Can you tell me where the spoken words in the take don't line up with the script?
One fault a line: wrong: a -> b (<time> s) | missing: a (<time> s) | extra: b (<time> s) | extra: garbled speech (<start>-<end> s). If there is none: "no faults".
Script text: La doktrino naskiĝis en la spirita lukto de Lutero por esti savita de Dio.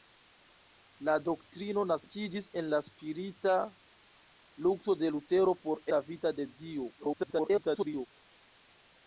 missing: esti (5.8 s)
extra: garbled speech (7.0-8.1 s)